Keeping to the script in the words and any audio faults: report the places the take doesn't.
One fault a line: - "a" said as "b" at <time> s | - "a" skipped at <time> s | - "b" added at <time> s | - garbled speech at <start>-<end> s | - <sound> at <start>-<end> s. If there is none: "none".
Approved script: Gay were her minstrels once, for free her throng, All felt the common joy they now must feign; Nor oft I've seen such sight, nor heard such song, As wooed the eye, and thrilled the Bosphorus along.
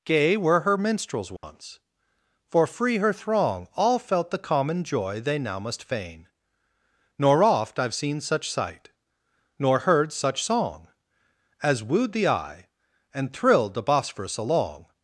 - dropout at 1.4-1.4 s